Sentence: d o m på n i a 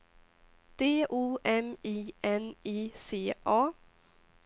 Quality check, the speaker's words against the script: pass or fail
fail